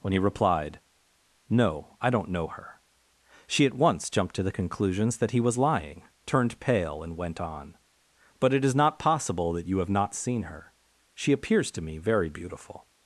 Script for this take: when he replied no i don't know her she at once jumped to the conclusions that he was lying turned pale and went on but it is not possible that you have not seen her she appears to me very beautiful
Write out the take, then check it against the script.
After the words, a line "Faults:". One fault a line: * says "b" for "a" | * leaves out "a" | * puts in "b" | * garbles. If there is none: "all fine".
when he replied no i don't know her she at once jumped to the conclusions that he was lying turned pale and went on but it is not possible that you have not seen her she appears to me very beautiful
Faults:
all fine